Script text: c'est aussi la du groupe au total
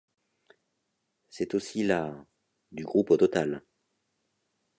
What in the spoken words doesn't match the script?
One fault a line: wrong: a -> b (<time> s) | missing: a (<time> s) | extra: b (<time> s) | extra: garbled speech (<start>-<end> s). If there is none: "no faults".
no faults